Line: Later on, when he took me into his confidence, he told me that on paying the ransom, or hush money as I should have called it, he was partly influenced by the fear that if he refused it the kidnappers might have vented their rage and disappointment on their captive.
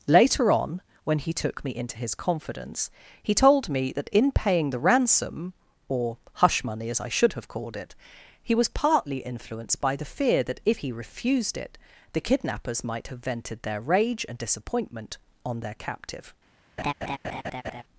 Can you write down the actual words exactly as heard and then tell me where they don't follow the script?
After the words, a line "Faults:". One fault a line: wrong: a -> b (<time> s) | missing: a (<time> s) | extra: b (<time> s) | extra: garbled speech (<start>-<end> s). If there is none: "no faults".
Later on, when he took me into his confidence, he told me that in paying the ransom, or hush money as I should have called it, he was partly influenced by the fear that if he refused it the kidnappers might have vented their rage and disappointment on their captive.
Faults:
wrong: on -> in (4.1 s)